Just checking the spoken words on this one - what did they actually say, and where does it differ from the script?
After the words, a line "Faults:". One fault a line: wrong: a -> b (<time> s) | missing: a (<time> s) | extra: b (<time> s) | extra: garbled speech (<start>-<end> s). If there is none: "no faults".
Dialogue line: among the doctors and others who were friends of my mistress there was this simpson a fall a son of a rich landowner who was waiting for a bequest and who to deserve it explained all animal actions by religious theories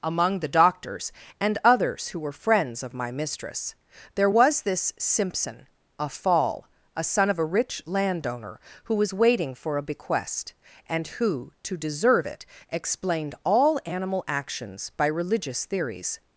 among the doctors and others who were friends of my mistress there was this simpson a fall a son of a rich landowner who was waiting for a bequest and who to deserve it explained all animal actions by religious theories
Faults:
no faults